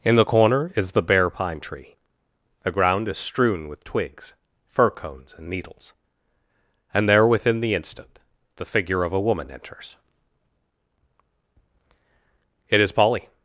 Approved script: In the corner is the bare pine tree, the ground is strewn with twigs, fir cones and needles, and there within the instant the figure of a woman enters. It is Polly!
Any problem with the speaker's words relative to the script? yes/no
no